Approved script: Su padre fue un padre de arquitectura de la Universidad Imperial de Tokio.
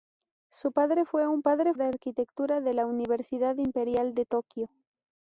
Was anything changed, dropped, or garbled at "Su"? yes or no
no